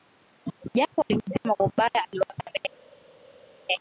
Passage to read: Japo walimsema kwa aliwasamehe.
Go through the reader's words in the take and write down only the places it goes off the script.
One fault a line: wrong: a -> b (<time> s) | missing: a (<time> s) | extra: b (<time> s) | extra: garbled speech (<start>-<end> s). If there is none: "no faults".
extra: ubaya (1.6 s)